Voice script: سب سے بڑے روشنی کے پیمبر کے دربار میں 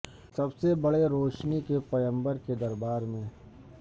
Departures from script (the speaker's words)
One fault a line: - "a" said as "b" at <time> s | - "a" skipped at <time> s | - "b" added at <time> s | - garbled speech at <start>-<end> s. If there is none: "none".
none